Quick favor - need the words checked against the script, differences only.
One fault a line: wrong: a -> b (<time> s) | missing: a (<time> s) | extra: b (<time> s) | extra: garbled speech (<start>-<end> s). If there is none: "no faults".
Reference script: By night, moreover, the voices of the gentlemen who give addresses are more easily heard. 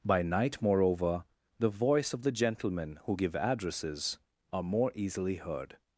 wrong: voices -> voice (1.7 s)